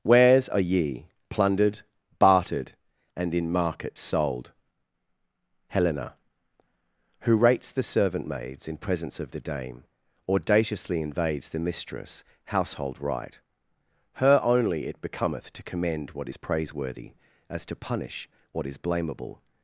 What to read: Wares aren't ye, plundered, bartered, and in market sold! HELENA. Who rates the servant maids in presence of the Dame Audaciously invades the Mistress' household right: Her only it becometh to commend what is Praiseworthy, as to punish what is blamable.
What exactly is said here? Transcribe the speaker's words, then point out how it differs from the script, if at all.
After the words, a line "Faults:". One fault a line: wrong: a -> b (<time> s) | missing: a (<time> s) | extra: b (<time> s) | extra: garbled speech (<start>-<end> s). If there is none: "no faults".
Wares are ye, plundered, bartered, and in market sold! HELENA. Who rates the servant maids in presence of the Dame Audaciously invades the Mistress' household right: Her only it becometh to commend what is Praiseworthy, as to punish what is blamable.
Faults:
wrong: aren't -> are (0.5 s)